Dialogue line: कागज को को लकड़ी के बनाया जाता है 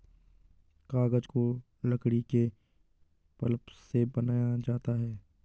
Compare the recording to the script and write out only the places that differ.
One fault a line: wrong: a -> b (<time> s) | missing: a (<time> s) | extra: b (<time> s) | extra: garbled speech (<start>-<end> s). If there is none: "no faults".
missing: को (1.6 s)
extra: पल्प से (3.4 s)